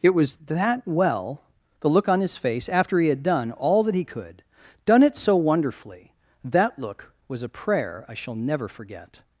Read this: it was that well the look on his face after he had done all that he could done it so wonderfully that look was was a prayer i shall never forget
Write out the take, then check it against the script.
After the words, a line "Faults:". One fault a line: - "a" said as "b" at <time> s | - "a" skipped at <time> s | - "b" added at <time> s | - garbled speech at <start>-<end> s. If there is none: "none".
it was that well the look on his face after he had done all that he could done it so wonderfully that look was a prayer i shall never forget
Faults:
- "was" skipped at 7.4 s